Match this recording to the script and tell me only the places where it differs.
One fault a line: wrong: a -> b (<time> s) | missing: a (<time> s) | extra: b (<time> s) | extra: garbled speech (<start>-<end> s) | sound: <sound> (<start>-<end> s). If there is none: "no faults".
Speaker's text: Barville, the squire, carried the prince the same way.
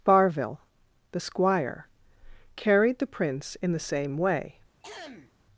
extra: in (3.6 s)
sound: throat clearing (4.8-5.3 s)